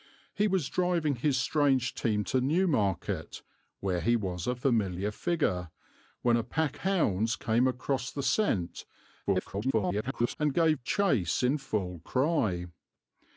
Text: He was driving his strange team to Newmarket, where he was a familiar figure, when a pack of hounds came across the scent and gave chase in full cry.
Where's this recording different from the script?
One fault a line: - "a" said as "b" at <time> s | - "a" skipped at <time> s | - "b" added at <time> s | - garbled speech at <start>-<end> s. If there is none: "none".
- "of" skipped at 6.8 s
- garbled speech at 9.2-10.4 s